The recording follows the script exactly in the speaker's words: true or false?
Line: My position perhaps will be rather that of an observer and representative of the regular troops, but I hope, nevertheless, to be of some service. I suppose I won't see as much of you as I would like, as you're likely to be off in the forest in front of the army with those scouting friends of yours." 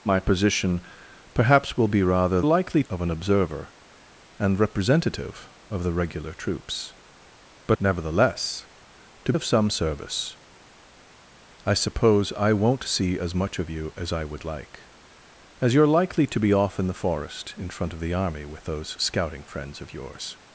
false